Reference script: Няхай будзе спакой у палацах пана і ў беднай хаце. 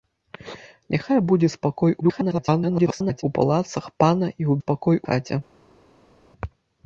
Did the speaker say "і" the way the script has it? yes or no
yes